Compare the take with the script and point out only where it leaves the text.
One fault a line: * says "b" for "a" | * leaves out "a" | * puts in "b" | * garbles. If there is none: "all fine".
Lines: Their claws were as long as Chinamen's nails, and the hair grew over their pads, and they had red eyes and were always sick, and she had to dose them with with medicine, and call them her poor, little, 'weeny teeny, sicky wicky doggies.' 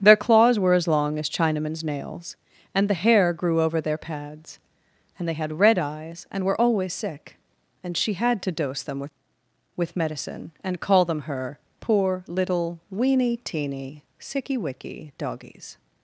all fine